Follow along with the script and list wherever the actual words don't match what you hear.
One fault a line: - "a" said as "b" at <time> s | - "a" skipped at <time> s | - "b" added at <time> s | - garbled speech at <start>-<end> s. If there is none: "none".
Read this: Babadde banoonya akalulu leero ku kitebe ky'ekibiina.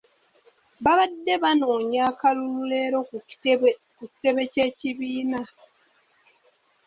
none